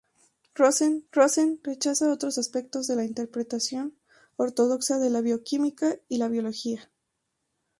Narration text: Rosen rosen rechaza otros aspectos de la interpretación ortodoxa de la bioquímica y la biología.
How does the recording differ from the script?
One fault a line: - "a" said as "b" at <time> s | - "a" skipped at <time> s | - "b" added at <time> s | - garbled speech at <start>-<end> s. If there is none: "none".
none